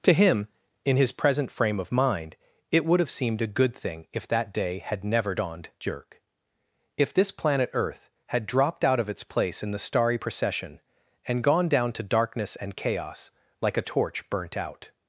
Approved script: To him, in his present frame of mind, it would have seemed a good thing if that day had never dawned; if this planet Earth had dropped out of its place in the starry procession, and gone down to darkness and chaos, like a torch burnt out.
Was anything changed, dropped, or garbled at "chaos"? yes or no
no